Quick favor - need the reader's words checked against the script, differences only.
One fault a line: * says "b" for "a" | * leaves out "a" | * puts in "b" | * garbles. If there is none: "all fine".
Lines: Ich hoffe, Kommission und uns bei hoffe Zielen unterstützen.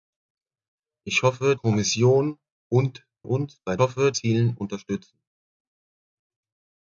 all fine